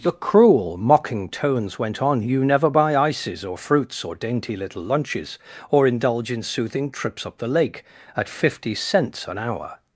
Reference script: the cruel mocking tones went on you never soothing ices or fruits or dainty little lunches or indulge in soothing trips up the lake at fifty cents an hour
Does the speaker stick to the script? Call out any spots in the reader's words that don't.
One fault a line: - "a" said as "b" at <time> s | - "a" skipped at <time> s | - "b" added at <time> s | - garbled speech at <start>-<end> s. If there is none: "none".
- "soothing" said as "buy" at 2.7 s